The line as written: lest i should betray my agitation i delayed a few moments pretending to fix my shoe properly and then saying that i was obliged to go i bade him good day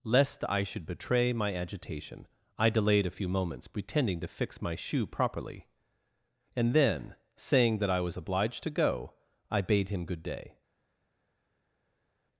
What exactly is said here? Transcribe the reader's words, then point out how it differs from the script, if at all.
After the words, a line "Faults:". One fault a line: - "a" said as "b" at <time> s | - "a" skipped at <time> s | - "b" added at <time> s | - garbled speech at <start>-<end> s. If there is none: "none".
lest i should betray my agitation i delayed a few moments pretending to fix my shoe properly and then saying that i was obliged to go i bade him good day
Faults:
none